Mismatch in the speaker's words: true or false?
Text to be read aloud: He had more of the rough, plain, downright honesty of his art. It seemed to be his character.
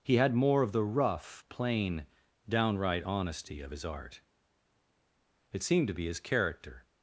false